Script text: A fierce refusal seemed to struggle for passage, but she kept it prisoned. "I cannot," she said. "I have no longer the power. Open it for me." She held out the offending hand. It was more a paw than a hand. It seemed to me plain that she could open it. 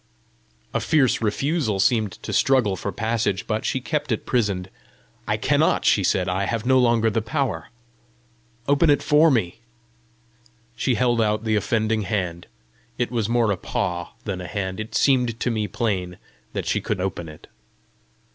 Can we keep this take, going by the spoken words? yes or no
yes